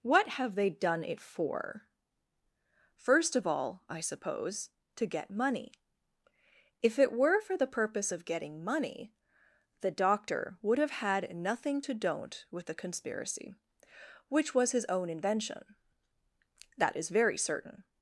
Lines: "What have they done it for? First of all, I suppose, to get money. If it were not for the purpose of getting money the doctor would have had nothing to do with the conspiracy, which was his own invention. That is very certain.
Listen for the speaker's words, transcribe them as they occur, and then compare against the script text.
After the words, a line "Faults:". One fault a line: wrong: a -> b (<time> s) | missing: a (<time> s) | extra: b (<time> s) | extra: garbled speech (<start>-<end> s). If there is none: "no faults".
"What have they done it for? First of all, I suppose, to get money. If it were for the purpose of getting money the doctor would have had nothing to don't with the conspiracy, which was his own invention. That is very certain.
Faults:
missing: not (7.4 s)
wrong: do -> don't (11.9 s)